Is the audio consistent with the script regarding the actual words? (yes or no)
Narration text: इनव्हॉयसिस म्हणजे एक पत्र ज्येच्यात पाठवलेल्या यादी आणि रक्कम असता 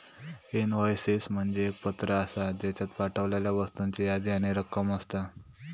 no